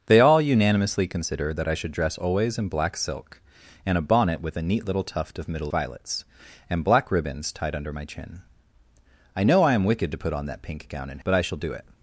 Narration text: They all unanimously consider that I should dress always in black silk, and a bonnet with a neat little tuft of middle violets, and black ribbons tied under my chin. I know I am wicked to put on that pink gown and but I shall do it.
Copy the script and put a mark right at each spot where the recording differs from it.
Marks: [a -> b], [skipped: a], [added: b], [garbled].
They all unanimously consider that I should dress always in black silk, and a bonnet with a neat little tuft of middle violets, and black ribbons tied under my chin. I know I am wicked to put on that pink gown and but I shall do it.